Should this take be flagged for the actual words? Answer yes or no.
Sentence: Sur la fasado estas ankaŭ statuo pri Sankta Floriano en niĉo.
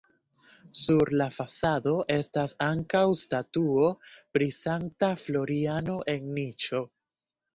no